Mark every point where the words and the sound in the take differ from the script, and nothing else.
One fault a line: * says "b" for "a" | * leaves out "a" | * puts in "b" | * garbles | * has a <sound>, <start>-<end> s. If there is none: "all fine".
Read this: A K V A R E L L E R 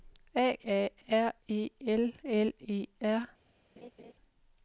* leaves out "K V"
* has a laugh, 3.8-4.1 s